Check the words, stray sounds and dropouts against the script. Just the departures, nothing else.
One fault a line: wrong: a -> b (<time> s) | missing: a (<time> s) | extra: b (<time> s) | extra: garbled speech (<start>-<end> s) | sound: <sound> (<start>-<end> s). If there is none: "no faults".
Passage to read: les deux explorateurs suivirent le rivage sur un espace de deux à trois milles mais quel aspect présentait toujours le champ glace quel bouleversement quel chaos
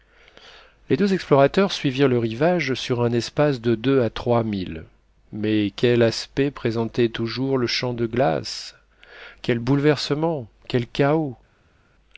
extra: de (7.9 s)